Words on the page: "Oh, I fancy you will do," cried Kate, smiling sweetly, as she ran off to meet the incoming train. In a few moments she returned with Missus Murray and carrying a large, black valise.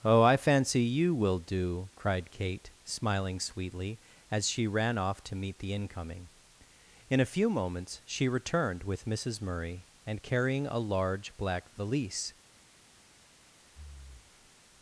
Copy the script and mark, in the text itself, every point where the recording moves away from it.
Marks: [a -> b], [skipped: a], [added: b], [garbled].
"Oh, I fancy you will do," cried Kate, smiling sweetly, as she ran off to meet the incoming [skipped: train.] In a few moments she returned with Missus Murray and carrying a large, black valise.